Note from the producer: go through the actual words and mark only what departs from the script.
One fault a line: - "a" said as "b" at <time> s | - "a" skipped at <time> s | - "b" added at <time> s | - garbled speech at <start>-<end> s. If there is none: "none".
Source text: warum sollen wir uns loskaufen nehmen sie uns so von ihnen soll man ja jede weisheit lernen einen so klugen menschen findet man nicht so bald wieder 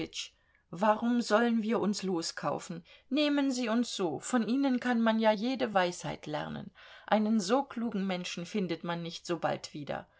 - "soll" said as "kann" at 4.8 s